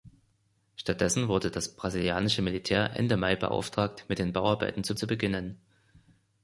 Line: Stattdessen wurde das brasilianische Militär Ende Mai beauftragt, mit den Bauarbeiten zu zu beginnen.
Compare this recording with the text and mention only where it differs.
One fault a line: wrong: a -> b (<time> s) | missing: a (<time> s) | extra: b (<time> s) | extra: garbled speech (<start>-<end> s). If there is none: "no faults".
no faults